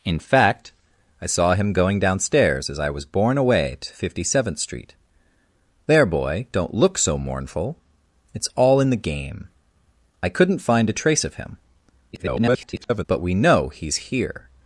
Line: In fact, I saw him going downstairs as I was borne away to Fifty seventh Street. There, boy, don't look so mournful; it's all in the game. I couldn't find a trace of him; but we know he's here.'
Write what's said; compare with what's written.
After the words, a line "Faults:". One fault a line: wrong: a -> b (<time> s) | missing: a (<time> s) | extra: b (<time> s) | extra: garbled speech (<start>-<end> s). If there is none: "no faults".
In fact, I saw him going downstairs as I was borne away to Fifty seventh Street. There, boy, don't look so mournful; it's all in the game. I couldn't find a trace of him; [garbled] but we know he's here.'
Faults:
extra: garbled speech (12.1-13.0 s)